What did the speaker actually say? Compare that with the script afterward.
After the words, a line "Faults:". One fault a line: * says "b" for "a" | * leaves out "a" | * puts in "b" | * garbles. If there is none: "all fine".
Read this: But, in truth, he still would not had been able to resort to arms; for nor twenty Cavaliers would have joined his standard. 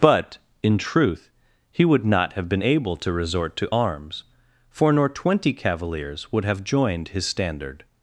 But, in truth, he would not have been able to resort to arms; for nor twenty Cavaliers would have joined his standard.
Faults:
* leaves out "still"
* says "have" for "had"